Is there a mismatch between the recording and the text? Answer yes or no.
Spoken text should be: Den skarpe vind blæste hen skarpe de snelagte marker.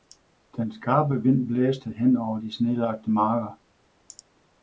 yes